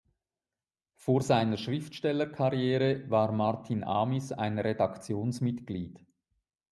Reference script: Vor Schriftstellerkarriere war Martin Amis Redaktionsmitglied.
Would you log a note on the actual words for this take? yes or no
yes